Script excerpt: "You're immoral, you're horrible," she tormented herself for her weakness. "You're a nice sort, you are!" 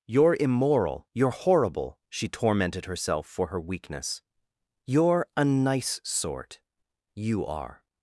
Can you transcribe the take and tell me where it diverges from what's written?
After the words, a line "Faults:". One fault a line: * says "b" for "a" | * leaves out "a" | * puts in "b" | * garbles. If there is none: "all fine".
"You're immoral, you're horrible," she tormented herself for her weakness. "You're a nice sort, you are!"
Faults:
all fine